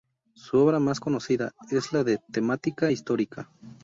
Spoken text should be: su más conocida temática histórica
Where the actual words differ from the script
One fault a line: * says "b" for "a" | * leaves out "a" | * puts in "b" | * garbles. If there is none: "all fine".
* puts in "obra"
* puts in "es la de"